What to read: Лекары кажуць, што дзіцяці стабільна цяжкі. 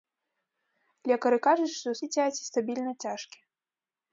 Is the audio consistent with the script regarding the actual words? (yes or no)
yes